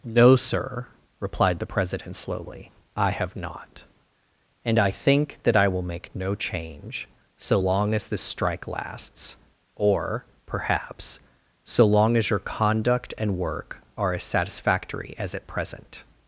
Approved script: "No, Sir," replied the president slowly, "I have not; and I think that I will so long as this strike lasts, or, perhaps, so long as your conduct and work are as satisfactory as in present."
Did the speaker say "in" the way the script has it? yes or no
no